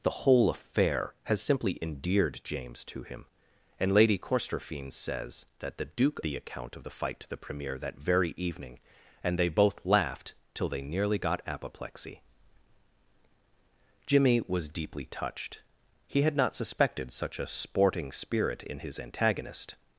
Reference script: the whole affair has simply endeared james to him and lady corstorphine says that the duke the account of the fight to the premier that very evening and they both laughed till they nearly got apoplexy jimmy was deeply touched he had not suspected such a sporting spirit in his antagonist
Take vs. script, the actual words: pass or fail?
pass